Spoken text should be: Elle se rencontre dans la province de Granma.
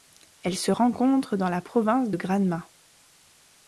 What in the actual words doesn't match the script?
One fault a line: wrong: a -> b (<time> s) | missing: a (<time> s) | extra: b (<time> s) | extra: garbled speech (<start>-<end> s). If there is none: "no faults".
no faults